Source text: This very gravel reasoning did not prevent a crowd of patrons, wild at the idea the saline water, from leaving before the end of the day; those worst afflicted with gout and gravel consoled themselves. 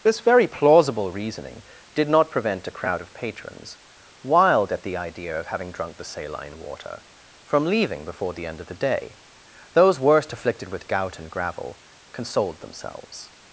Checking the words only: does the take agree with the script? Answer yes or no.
no